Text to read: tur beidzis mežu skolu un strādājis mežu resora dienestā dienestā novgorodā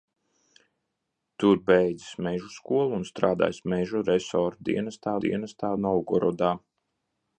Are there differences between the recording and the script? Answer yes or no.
no